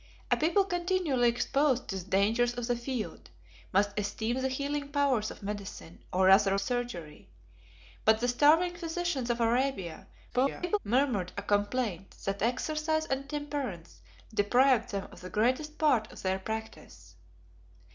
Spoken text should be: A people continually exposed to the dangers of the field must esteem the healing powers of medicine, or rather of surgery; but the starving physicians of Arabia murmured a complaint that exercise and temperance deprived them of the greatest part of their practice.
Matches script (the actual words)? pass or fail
fail